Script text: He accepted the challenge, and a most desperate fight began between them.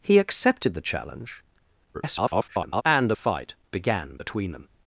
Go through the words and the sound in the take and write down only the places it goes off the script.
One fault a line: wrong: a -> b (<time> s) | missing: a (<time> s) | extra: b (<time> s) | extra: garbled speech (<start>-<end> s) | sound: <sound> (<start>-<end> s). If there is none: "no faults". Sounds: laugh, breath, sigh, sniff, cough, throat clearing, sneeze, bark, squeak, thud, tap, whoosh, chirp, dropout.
extra: garbled speech (1.9-2.8 s)
missing: most desperate (3.2 s)